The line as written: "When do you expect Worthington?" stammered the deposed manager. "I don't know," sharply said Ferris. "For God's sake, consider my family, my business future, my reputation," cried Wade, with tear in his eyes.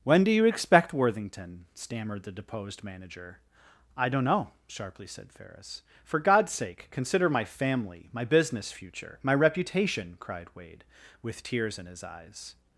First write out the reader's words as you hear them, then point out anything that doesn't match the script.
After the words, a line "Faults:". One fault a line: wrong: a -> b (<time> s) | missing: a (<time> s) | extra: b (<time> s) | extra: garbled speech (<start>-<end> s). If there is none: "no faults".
"When do you expect Worthington?" stammered the deposed manager. "I don't know," sharply said Ferris. "For God's sake, consider my family, my business future, my reputation," cried Wade, with tears in his eyes.
Faults:
wrong: tear -> tears (11.4 s)